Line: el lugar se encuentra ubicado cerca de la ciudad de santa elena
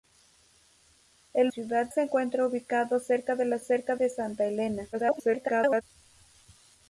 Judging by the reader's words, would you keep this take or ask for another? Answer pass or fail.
fail